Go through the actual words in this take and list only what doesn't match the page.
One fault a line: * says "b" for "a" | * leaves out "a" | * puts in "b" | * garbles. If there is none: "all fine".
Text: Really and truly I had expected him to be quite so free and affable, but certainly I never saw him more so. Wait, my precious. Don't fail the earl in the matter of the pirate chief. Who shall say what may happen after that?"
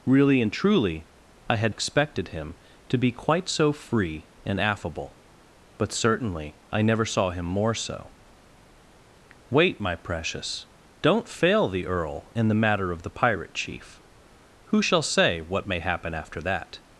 all fine